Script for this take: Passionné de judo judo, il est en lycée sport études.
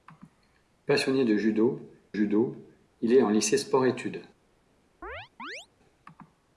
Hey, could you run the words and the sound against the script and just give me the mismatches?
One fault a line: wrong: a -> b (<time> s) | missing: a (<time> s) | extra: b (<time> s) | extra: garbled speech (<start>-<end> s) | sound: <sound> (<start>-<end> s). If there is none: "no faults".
sound: chirp (5.0-5.7 s)